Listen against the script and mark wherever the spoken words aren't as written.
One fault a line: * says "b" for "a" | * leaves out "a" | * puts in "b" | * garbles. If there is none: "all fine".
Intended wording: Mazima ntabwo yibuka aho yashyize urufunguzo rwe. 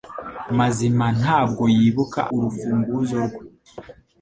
* leaves out "aho yashyize"